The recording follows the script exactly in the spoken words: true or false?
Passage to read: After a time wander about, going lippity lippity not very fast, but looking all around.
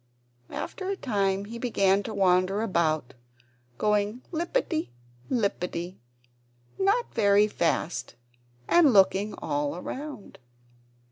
false